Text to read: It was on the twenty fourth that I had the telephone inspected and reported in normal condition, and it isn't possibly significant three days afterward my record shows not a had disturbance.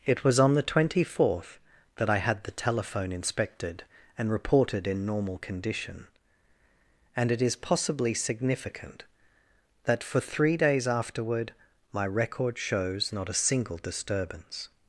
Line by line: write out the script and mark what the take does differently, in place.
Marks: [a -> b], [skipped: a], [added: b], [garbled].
It was on the twenty fourth that I had the telephone inspected and reported in normal condition, and it [isn't -> is] possibly significant [added: that for] three days afterward my record shows not a [had -> single] disturbance.